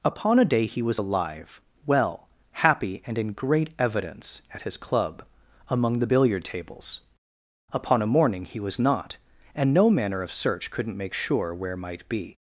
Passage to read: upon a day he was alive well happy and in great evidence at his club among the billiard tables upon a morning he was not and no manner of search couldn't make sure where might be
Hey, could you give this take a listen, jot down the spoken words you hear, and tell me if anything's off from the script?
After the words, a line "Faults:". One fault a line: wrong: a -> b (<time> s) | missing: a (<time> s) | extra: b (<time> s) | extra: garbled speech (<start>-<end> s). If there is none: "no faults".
upon a day he was alive well happy and in great evidence at his club among the billiard tables upon a morning he was not and no manner of search couldn't make sure where might be
Faults:
no faults